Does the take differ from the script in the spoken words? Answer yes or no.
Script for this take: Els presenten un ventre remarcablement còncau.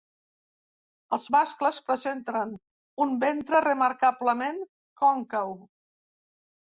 yes